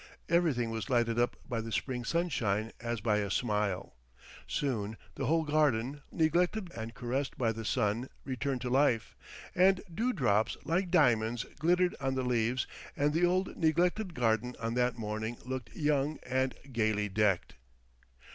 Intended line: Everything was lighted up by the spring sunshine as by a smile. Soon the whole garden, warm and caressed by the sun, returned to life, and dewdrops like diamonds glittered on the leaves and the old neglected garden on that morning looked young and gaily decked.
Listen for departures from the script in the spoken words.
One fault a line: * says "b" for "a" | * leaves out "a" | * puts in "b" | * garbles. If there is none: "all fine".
* says "neglected" for "warm"